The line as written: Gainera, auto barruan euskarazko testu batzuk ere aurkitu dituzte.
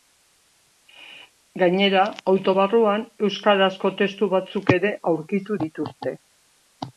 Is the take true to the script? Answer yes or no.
yes